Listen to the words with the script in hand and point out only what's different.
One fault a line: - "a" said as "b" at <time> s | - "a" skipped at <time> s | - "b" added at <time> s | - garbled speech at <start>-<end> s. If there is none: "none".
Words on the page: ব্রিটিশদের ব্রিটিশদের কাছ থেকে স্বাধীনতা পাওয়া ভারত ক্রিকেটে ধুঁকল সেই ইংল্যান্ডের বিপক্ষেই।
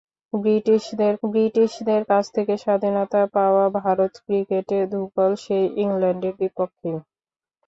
none